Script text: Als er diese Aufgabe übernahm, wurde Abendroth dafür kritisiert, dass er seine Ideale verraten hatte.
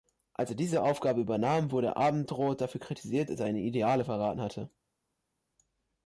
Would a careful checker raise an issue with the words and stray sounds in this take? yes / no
yes